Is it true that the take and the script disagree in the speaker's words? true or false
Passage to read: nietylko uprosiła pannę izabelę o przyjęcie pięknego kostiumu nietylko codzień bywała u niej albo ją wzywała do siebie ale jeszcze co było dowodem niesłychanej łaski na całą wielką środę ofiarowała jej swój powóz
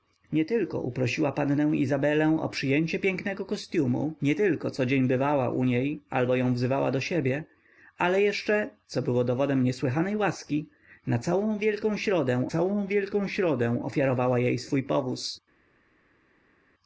true